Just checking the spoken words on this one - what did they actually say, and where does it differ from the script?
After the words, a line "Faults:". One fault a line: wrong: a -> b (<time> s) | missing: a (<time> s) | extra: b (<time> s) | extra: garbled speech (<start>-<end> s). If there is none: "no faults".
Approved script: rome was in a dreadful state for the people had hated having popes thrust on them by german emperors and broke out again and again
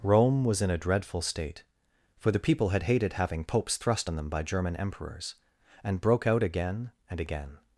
rome was in a dreadful state for the people had hated having popes thrust on them by german emperors and broke out again and again
Faults:
no faults